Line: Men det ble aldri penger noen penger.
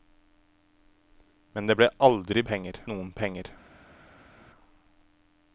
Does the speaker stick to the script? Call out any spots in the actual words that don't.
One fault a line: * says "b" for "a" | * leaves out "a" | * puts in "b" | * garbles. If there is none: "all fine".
all fine